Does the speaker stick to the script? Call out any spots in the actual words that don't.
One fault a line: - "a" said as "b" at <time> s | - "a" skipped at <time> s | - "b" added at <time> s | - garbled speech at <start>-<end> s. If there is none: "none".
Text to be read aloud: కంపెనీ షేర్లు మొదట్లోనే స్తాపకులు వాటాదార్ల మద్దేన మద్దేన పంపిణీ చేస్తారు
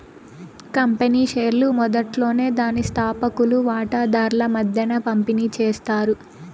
- "దాని" added at 2.6 s
- "మద్దేన" skipped at 5.0 s